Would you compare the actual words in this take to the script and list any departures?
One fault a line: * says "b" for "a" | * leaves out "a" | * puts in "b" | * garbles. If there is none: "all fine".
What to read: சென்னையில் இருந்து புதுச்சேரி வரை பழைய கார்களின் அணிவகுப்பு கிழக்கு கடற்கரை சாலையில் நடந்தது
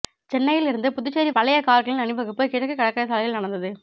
* leaves out "வரை"